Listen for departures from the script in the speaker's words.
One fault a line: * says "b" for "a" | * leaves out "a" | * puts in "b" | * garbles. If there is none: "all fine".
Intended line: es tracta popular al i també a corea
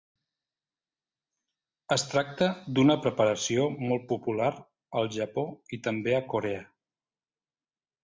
* puts in "d'una preparació molt"
* puts in "japó"